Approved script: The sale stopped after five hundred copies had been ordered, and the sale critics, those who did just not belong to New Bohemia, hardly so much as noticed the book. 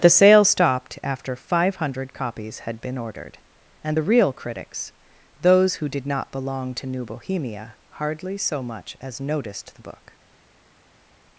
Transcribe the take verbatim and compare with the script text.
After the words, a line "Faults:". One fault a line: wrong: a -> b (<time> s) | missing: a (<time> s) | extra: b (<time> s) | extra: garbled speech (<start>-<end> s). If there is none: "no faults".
The sale stopped after five hundred copies had been ordered, and the real critics, those who did not belong to New Bohemia, hardly so much as noticed the book.
Faults:
wrong: sale -> real (4.0 s)
missing: just (6.1 s)